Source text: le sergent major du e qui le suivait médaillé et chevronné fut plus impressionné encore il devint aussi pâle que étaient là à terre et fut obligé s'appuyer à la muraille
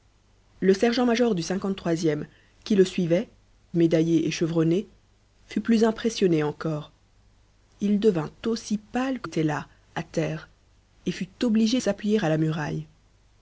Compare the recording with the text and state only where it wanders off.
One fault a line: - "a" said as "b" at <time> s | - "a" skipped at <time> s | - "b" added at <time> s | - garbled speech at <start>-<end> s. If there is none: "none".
none